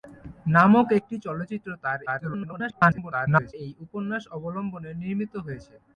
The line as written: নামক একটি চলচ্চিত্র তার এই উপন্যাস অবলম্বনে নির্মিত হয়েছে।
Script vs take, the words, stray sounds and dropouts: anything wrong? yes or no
yes